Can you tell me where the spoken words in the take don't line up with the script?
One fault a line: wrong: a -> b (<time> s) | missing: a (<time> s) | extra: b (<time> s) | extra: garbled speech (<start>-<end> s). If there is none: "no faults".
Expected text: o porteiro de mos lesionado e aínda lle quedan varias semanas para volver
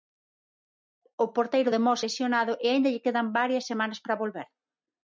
no faults